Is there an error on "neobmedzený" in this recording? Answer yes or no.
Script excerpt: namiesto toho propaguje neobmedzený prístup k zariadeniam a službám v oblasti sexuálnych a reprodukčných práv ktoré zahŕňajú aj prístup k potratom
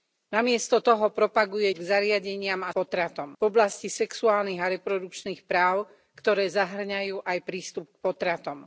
yes